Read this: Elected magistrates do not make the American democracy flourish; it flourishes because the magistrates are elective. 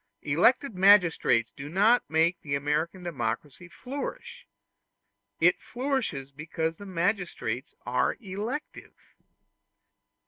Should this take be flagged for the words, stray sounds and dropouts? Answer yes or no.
no